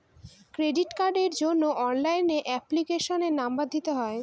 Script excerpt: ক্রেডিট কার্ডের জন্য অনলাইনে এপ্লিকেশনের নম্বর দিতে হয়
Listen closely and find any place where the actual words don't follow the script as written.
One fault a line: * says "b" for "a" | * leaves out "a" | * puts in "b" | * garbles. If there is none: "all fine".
all fine